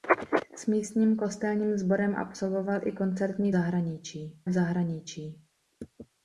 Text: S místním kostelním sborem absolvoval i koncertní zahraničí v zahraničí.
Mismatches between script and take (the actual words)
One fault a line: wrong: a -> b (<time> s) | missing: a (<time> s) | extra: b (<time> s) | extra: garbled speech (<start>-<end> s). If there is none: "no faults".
no faults